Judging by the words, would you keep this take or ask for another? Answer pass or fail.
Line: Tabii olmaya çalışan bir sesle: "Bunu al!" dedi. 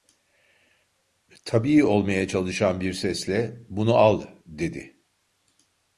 pass